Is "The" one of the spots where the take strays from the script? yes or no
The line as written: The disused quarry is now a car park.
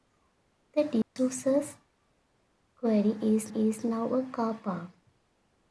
no